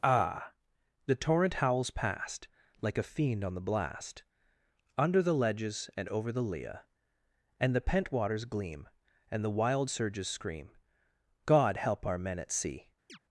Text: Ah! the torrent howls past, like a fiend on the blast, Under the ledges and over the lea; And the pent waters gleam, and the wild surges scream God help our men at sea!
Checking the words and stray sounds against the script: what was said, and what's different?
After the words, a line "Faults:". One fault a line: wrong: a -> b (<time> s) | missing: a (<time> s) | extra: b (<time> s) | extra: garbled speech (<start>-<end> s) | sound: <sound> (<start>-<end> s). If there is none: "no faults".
Ah! the torrent howls past, like a fiend on the blast, Under the ledges and over the lea; And the pent waters gleam, and the wild surges scream God help our men at sea!
Faults:
sound: chirp (13.1-13.2 s)